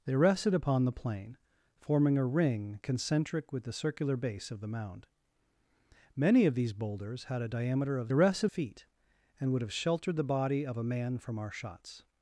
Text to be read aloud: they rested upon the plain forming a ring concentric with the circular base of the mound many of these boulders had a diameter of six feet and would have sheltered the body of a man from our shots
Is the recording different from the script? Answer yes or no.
yes